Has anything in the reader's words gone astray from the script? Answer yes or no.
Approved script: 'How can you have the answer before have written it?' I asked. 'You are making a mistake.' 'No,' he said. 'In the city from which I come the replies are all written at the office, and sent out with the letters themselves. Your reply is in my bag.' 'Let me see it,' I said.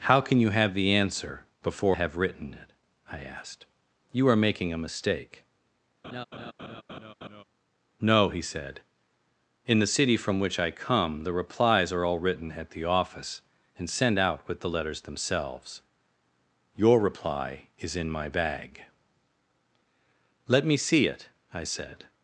no